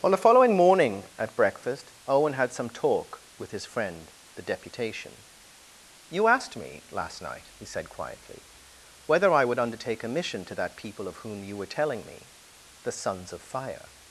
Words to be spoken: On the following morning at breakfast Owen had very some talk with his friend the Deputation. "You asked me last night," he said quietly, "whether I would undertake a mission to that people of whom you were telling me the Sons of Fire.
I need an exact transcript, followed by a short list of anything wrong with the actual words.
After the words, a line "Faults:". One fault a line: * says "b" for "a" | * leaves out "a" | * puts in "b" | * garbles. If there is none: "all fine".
On the following morning at breakfast Owen had some talk with his friend the Deputation. "You asked me last night," he said quietly, "whether I would undertake a mission to that people of whom you were telling me the Sons of Fire.
Faults:
* leaves out "very"